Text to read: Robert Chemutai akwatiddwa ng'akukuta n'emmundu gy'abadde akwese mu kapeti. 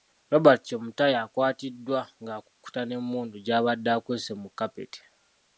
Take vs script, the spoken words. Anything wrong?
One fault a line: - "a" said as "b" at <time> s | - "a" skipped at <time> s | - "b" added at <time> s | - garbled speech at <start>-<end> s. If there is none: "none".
none